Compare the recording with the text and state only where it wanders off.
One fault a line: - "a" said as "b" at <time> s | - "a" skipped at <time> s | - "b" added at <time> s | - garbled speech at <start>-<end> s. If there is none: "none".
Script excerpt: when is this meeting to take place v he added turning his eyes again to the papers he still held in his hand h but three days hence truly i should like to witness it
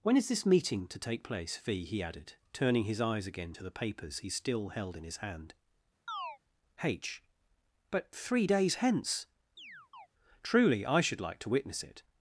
none